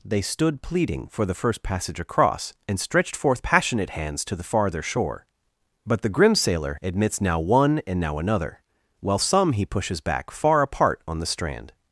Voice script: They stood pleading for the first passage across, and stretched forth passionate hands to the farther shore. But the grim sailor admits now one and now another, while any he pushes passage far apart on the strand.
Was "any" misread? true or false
true